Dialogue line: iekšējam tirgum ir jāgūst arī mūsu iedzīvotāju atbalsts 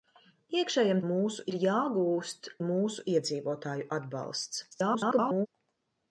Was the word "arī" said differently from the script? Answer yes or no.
yes